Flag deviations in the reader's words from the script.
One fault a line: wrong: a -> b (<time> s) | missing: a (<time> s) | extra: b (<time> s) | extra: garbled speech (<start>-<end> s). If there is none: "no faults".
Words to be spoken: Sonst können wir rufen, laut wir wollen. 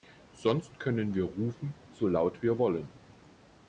extra: so (1.9 s)